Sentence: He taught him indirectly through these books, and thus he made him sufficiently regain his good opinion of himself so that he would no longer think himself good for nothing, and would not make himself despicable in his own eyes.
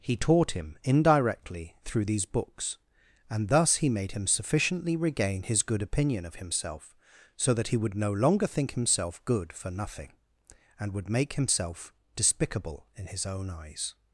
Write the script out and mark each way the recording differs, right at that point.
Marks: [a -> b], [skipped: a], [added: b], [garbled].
He taught him indirectly through these books, and thus he made him sufficiently regain his good opinion of himself so that he would no longer think himself good for nothing, and would [skipped: not] make himself despicable in his own eyes.